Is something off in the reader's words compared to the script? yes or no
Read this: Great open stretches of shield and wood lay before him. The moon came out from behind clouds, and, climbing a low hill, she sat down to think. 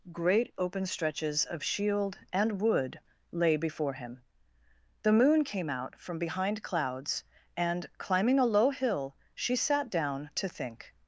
no